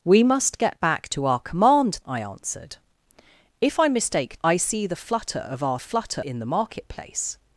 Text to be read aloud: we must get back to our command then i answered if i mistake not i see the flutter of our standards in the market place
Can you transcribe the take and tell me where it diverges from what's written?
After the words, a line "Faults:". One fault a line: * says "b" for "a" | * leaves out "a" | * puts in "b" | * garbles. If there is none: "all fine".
we must get back to our command i answered if i mistake i see the flutter of our flutter in the market place
Faults:
* leaves out "then"
* leaves out "not"
* says "flutter" for "standards"